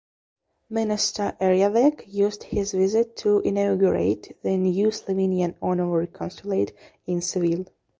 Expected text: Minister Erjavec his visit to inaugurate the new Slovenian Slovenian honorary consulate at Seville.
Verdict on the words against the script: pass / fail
fail